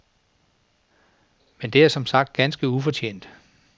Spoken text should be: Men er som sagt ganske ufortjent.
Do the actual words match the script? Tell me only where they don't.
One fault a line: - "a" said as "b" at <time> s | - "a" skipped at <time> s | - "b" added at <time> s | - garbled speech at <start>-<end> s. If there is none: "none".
- "det" added at 1.7 s